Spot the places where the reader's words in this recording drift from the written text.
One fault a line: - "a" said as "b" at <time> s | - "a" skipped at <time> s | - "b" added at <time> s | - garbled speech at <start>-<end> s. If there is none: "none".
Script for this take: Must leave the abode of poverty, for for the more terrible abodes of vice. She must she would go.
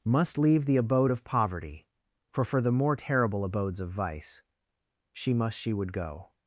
none